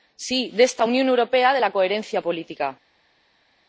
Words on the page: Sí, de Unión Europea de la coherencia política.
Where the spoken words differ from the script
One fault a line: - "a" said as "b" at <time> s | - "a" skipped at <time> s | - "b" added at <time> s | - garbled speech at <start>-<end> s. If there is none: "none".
- "esta" added at 0.6 s